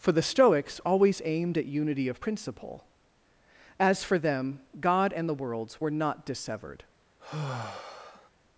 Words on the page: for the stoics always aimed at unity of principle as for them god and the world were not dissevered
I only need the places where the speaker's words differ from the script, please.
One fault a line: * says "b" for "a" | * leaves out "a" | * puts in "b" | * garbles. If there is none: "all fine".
* says "worlds" for "world"